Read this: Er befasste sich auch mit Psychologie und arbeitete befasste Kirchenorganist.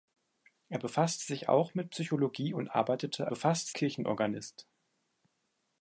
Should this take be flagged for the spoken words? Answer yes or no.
no